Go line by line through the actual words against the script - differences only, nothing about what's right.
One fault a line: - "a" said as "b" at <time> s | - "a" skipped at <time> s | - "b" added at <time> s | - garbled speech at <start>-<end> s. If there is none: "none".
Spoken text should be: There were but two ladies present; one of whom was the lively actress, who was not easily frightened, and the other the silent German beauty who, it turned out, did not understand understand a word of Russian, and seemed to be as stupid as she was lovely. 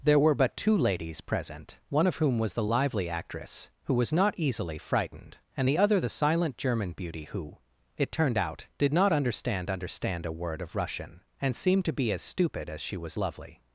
none